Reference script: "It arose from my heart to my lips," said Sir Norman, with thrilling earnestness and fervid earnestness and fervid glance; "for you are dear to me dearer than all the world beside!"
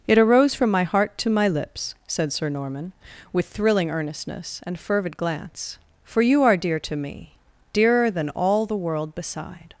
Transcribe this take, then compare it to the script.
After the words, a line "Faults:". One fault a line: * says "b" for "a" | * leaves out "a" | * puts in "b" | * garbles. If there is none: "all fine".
"It arose from my heart to my lips," said Sir Norman, with thrilling earnestness and fervid glance; "for you are dear to me dearer than all the world beside!"
Faults:
* leaves out "earnestness and fervid"